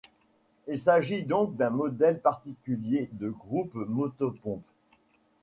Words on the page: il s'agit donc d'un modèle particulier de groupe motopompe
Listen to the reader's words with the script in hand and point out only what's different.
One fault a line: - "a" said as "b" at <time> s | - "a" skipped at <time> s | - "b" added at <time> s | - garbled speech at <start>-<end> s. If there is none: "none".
none